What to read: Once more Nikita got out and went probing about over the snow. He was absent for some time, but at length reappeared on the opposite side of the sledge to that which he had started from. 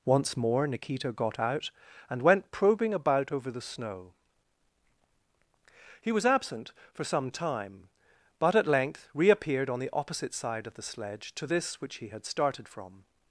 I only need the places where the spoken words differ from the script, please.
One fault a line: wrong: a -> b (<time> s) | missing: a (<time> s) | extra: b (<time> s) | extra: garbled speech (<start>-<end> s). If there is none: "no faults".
wrong: that -> this (11.4 s)